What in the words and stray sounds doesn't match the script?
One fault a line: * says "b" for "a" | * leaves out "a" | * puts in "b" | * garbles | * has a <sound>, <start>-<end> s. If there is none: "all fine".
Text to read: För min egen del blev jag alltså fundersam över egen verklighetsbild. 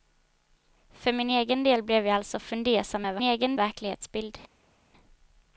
all fine